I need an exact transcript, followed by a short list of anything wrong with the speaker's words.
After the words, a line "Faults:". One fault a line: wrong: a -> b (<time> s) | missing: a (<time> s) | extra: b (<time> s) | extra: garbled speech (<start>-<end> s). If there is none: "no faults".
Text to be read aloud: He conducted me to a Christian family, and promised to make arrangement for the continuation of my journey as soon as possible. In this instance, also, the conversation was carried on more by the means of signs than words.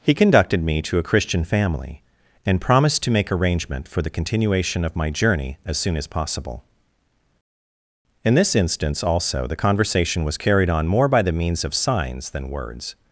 He conducted me to a Christian family, and promised to make arrangement for the continuation of my journey as soon as possible. In this instance, also, the conversation was carried on more by the means of signs than words.
Faults:
no faults